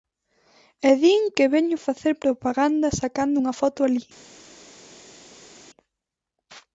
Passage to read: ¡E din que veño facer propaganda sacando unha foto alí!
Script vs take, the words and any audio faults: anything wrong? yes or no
no